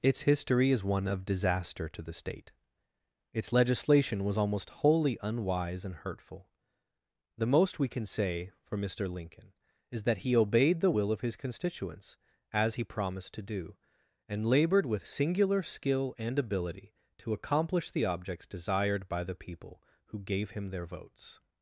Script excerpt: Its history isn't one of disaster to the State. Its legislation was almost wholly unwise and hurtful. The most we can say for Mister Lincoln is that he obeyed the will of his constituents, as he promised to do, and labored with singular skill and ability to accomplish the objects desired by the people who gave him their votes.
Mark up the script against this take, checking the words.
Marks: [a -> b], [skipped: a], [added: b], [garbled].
Its history [isn't -> is] one of disaster to the State. Its legislation was almost wholly unwise and hurtful. The most we can say for Mister Lincoln is that he obeyed the will of his constituents, as he promised to do, and labored with singular skill and ability to accomplish the objects desired by the people who gave him their votes.